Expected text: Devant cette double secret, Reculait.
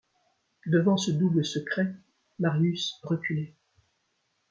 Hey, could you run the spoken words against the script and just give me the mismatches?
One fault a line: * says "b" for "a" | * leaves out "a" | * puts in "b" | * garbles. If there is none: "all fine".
* says "ce" for "cette"
* puts in "Marius"